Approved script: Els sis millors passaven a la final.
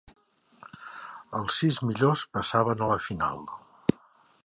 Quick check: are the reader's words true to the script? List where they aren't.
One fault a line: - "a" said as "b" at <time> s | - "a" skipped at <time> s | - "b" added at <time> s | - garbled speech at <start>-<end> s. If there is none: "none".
none